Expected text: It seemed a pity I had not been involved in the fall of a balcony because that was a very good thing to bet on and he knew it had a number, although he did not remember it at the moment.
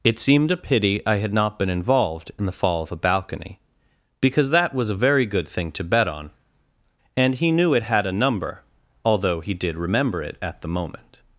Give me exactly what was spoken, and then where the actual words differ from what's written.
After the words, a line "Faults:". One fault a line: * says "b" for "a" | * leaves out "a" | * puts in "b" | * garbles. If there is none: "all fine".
It seemed a pity I had not been involved in the fall of a balcony because that was a very good thing to bet on and he knew it had a number, although he did remember it at the moment.
Faults:
* leaves out "not"